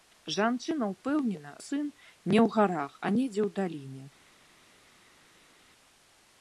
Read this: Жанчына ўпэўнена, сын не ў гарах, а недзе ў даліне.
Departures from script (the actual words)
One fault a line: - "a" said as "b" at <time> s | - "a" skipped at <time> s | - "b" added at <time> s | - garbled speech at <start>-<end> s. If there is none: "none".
none